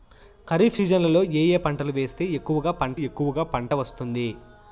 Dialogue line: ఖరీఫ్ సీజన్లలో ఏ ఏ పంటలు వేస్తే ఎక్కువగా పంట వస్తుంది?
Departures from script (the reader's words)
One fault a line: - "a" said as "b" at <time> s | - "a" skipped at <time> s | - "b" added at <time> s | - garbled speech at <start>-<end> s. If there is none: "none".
- "ఎక్కువగా పంట" added at 3.0 s